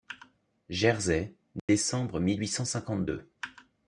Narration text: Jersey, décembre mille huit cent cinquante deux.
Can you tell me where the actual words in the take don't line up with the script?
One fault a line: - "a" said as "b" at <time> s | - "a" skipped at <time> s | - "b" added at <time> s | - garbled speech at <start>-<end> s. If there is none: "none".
none